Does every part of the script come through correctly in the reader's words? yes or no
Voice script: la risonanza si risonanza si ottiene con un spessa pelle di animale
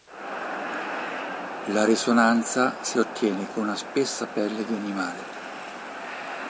no